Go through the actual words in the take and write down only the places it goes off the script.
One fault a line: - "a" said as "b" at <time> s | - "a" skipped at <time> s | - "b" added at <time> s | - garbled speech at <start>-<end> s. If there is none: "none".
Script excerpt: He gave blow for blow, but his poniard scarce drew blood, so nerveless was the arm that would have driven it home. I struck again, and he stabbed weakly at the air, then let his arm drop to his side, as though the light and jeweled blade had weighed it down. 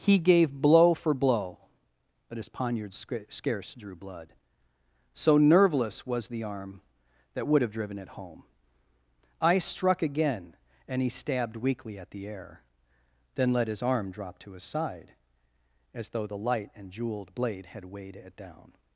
none